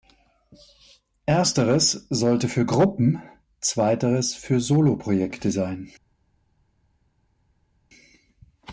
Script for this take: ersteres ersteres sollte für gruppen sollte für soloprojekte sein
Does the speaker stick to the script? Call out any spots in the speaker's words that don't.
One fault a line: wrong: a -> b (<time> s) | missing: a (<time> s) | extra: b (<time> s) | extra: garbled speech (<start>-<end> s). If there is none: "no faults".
missing: ersteres (2.1 s)
wrong: sollte -> zweiteres (3.6 s)